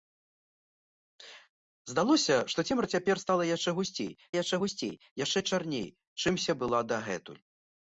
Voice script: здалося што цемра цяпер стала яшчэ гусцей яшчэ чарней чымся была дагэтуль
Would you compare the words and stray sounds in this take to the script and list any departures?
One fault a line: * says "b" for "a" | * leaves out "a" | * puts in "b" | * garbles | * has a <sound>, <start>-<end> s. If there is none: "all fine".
* puts in "гусцей яшчэ"